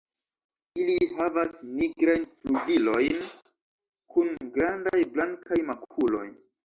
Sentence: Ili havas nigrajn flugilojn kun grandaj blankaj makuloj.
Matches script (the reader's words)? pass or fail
pass